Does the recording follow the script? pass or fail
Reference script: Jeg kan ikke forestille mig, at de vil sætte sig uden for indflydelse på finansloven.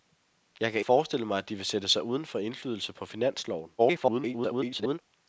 fail